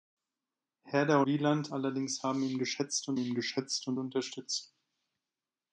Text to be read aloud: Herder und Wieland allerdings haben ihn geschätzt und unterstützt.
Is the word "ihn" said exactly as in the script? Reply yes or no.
yes